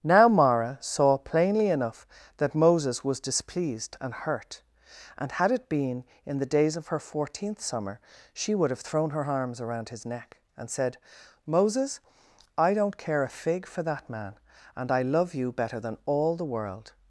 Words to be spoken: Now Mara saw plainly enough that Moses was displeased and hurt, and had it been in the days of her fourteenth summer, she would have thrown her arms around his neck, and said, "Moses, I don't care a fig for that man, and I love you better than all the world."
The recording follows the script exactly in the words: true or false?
true